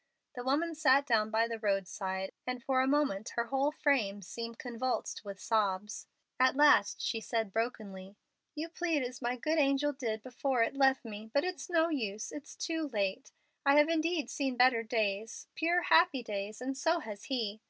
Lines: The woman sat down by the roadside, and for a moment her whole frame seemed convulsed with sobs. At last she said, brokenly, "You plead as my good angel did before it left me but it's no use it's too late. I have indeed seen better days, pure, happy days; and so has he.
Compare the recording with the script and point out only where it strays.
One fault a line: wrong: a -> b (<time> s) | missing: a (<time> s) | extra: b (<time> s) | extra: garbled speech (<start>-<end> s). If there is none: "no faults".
no faults